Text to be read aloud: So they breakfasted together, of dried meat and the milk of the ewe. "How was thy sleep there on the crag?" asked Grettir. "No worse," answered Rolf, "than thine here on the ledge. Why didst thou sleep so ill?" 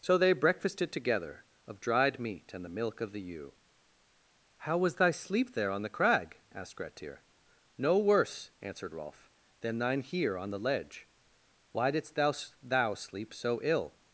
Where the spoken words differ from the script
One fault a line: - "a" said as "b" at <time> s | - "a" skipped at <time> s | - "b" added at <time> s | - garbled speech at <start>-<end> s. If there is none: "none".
- "thou" added at 12.6 s